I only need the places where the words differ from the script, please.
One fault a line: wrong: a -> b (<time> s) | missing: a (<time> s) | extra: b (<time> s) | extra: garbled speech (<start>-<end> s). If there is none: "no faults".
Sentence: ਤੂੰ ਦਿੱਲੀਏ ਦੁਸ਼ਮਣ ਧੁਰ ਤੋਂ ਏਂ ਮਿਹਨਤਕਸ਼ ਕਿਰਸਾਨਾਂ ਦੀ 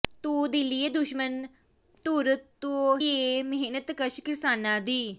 no faults